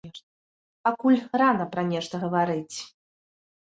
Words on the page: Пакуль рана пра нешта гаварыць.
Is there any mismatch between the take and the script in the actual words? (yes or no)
no